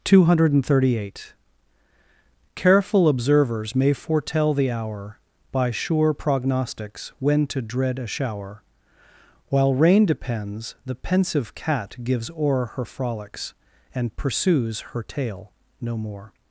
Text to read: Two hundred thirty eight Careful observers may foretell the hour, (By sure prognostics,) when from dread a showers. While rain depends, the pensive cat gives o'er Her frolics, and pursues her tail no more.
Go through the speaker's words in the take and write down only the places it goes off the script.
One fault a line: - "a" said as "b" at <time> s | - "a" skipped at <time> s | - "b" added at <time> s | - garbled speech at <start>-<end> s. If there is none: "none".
- "from" said as "to" at 7.5 s
- "showers" said as "shower" at 8.1 s